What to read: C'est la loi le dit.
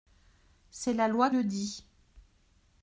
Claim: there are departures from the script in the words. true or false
false